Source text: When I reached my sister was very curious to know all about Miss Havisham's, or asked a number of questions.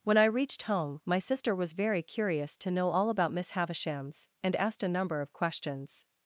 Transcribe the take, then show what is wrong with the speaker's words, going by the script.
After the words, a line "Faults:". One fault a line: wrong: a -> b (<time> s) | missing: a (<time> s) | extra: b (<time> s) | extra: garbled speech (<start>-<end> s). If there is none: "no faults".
When I reached home, my sister was very curious to know all about Miss Havisham's, and asked a number of questions.
Faults:
extra: home (0.6 s)
wrong: or -> and (4.4 s)